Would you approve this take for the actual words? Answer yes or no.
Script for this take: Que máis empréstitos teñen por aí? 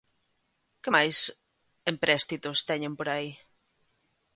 yes